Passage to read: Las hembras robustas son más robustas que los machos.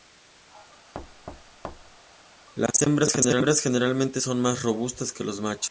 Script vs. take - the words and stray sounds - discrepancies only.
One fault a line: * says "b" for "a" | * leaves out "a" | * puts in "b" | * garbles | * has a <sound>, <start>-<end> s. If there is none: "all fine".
* has a thud, 0.9-2.0 s
* says "generalmente" for "robustas"